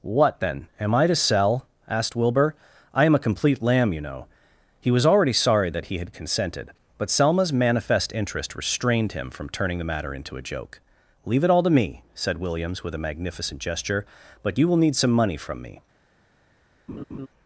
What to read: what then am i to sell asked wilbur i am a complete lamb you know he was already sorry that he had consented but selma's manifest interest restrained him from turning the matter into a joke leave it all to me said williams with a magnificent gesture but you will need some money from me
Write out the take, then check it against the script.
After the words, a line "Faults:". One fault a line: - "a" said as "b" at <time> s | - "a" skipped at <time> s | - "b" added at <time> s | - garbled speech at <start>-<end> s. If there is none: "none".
what then am i to sell asked wilbur i am a complete lamb you know he was already sorry that he had consented but selma's manifest interest restrained him from turning the matter into a joke leave it all to me said williams with a magnificent gesture but you will need some money from me
Faults:
none